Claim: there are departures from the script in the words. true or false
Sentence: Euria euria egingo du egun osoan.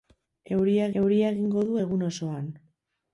false